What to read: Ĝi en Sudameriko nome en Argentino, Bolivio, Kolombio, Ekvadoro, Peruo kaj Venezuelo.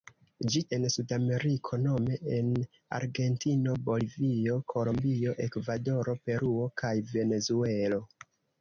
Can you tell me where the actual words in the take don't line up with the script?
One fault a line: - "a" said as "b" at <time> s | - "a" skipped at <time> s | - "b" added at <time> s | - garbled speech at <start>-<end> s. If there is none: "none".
none